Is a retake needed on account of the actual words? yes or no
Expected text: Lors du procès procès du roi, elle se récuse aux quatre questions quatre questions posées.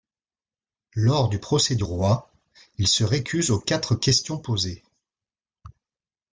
yes